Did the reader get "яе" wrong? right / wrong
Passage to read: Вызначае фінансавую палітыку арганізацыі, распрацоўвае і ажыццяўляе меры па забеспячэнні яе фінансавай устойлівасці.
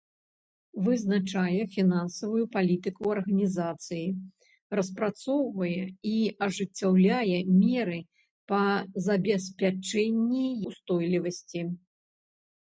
wrong